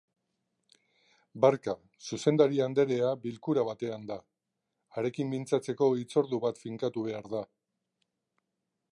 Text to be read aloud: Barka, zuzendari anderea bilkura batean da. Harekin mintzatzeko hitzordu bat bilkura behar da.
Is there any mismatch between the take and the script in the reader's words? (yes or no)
yes